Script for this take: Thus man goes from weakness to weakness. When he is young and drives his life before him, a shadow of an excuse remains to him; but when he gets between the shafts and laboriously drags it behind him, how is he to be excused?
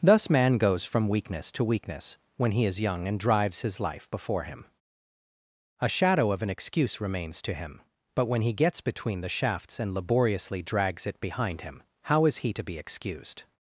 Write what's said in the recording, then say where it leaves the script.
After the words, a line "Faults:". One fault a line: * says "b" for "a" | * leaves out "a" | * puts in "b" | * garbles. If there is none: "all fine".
Thus man goes from weakness to weakness. When he is young and drives his life before him, a shadow of an excuse remains to him; but when he gets between the shafts and laboriously drags it behind him, how is he to be excused?
Faults:
all fine